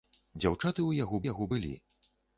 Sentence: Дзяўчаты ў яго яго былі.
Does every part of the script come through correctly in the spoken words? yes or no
yes